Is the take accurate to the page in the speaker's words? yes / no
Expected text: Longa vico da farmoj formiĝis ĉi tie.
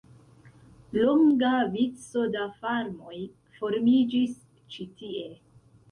yes